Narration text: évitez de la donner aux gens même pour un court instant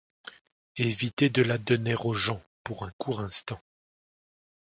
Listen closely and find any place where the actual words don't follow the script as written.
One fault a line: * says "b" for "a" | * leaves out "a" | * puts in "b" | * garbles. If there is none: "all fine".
* leaves out "même"